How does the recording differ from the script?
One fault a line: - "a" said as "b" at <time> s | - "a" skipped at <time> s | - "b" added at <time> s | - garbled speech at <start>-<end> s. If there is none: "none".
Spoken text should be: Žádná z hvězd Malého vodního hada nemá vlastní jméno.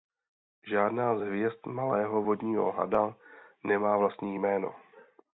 none